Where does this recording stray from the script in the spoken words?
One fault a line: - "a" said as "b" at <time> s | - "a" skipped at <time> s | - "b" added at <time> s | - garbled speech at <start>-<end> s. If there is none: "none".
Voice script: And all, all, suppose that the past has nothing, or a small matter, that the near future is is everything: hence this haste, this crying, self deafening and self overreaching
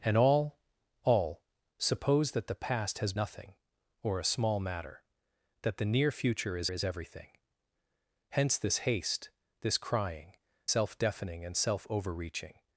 none